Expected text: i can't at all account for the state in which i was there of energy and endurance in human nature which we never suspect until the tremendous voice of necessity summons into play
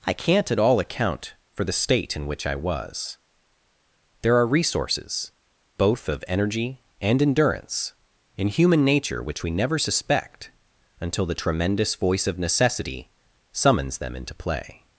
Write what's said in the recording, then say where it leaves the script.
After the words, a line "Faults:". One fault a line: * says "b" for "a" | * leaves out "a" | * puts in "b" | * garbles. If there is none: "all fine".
i can't at all account for the state in which i was there are resources both of energy and endurance in human nature which we never suspect until the tremendous voice of necessity summons them into play
Faults:
* puts in "are resources both"
* puts in "them"